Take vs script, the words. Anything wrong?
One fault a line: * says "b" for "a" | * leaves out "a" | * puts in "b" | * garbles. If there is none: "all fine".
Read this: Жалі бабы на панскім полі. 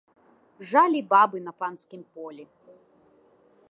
all fine